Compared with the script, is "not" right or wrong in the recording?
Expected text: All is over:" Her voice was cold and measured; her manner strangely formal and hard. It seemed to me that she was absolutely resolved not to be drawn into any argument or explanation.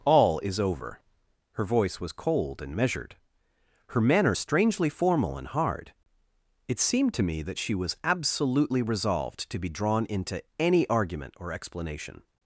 wrong